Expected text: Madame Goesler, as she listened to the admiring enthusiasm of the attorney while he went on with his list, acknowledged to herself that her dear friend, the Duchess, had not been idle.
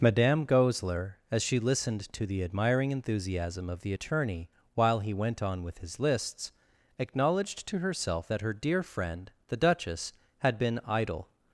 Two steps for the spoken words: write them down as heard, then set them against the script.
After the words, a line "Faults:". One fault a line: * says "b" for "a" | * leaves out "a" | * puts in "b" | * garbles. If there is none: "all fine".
Madame Goesler, as she listened to the admiring enthusiasm of the attorney while he went on with his lists, acknowledged to herself that her dear friend, the Duchess, had been idle.
Faults:
* says "lists" for "list"
* leaves out "not"